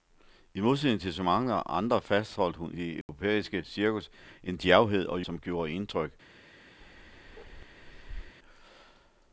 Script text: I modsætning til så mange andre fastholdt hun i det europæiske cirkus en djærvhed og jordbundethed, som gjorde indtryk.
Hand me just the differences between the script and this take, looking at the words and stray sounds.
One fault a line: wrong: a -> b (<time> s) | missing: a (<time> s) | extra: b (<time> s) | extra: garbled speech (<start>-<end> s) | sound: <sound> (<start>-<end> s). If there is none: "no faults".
missing: i (2.8 s)
sound: dropout (3.0-3.1 s)
missing: jordbundethed (5.2 s)
sound: bark (6.8-8.3 s)